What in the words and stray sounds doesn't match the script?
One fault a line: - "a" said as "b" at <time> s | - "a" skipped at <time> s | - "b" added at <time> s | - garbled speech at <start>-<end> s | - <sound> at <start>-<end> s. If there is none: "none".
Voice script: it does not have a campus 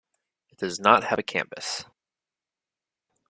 none